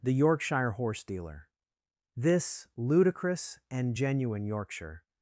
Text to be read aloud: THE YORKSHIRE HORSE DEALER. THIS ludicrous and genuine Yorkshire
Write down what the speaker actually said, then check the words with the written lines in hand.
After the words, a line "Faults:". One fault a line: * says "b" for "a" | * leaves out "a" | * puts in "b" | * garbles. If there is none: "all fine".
THE YORKSHIRE HORSE DEALER. THIS ludicrous and genuine Yorkshire
Faults:
all fine